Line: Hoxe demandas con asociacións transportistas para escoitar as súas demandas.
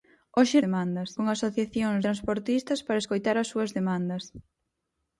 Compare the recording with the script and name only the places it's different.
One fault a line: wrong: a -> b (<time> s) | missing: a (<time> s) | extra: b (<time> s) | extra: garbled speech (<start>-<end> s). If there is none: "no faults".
no faults